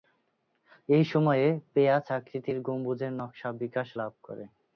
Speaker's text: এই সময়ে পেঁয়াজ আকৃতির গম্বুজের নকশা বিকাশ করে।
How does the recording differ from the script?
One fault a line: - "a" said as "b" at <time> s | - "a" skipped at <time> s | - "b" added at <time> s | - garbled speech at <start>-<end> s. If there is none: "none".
- "লাভ" added at 4.0 s